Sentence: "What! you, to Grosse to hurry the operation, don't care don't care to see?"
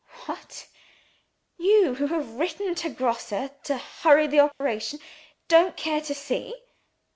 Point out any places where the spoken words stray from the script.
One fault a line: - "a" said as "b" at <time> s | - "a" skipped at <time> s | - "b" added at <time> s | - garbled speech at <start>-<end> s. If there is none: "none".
- "who have written" added at 1.9 s
- "don't care" skipped at 6.0 s